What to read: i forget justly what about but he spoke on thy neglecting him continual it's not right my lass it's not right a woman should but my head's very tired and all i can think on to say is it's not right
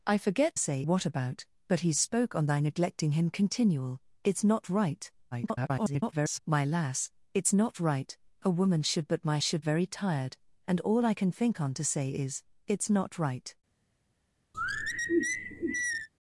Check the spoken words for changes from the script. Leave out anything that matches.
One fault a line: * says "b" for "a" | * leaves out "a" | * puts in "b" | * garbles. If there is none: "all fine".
* says "say" for "justly"
* garbles
* says "should" for "head's"